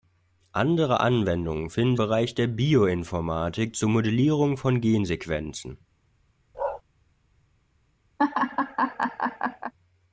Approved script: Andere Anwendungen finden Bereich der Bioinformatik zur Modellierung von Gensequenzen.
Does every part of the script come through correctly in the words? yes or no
yes